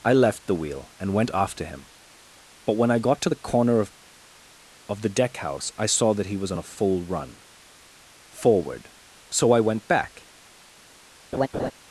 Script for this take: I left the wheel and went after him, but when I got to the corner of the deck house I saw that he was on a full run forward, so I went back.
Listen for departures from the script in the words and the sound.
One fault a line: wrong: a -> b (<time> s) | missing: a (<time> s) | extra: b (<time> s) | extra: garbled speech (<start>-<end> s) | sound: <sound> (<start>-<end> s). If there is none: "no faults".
extra: of (4.9 s)
sound: laugh (11.3-11.7 s)